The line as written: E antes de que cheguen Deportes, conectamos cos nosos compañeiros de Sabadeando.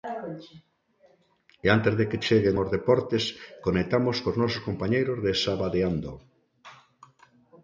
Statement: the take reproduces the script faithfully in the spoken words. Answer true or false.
false